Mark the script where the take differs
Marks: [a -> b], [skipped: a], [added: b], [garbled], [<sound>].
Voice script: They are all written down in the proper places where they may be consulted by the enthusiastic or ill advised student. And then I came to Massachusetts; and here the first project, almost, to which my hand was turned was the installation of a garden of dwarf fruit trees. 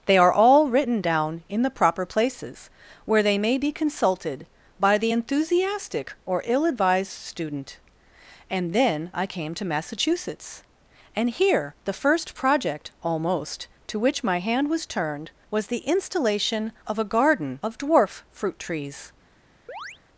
They are all written down in the proper places where they may be consulted by the enthusiastic or ill advised student. And then I came to Massachusetts; and here the first project, almost, to which my hand was turned was the installation of a garden of dwarf fruit trees. [chirp]